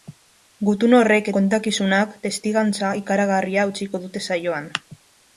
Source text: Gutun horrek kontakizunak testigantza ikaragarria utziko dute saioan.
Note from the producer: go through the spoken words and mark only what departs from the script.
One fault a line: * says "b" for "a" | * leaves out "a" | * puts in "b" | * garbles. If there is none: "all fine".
all fine